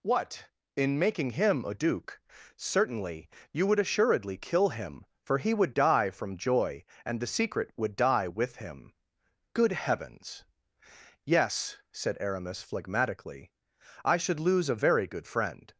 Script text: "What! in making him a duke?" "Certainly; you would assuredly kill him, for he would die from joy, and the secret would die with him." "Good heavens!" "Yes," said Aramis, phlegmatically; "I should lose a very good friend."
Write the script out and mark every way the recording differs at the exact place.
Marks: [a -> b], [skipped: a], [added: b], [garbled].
"What! in making him a duke?" "Certainly; you would assuredly kill him, for he would die from joy, and the secret would die with him." "Good heavens!" "Yes," said Aramis, phlegmatically; "I should lose a very good friend."